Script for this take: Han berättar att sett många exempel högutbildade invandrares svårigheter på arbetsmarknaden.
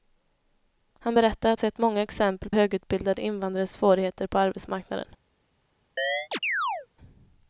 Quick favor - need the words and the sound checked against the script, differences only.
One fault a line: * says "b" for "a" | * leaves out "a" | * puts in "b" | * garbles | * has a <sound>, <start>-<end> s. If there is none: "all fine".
* has a chirp, 6.0-6.9 s